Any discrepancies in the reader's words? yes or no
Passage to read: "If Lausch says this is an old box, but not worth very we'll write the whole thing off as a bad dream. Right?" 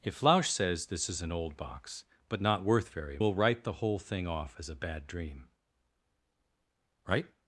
no